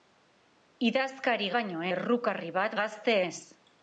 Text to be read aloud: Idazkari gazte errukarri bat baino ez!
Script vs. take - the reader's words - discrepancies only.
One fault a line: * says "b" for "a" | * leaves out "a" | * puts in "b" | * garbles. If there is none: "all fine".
* says "baino" for "gazte"
* says "gazte" for "baino"